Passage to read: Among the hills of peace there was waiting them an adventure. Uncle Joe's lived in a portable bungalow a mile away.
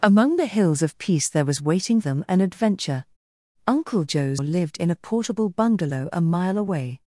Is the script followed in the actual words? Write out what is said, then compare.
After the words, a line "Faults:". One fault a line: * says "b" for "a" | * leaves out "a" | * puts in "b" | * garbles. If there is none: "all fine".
Among the hills of peace there was waiting them an adventure. Uncle Joe's lived in a portable bungalow a mile away.
Faults:
all fine